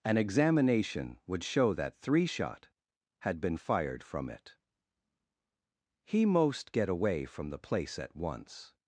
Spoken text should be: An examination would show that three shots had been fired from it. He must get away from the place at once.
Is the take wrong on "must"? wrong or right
wrong